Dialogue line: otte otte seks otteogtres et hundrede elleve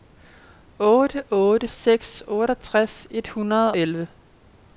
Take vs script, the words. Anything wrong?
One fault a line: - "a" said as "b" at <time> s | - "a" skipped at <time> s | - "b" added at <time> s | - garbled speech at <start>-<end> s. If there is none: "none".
none